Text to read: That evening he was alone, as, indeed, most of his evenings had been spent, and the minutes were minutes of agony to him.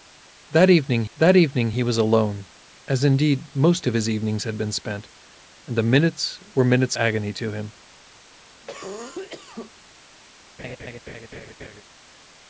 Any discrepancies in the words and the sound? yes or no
yes